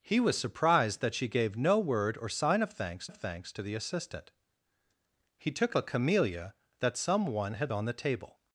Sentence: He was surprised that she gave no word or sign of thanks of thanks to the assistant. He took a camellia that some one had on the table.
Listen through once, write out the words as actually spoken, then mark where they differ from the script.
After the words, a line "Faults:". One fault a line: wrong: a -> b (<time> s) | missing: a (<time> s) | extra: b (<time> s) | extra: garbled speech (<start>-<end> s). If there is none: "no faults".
He was surprised that she gave no word or sign of thanks of thanks to the assistant. He took a camellia that some one had on the table.
Faults:
no faults